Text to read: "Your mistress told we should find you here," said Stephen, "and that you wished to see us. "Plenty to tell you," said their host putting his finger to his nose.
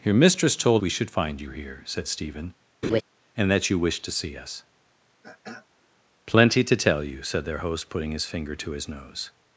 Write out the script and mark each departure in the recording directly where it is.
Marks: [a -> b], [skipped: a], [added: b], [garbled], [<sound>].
"Your mistress told we should find you here," said Stephen, [laugh] "and that you wished to see us. [throat clearing] "Plenty to tell you," said their host putting his finger to his nose.